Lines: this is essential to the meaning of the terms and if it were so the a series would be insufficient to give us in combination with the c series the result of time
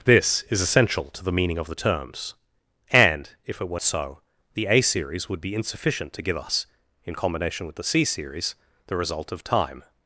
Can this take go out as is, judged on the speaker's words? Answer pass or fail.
pass